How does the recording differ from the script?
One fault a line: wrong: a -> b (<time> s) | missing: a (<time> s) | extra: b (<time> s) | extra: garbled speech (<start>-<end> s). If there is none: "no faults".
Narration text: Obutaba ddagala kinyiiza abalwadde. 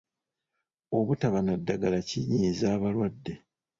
extra: na (1.4 s)